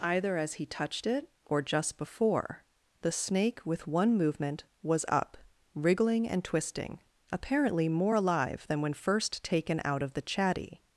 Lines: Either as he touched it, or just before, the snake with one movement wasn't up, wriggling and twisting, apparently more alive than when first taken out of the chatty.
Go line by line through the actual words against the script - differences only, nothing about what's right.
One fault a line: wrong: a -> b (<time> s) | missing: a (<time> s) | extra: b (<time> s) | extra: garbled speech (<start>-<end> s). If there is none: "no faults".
wrong: wasn't -> was (4.8 s)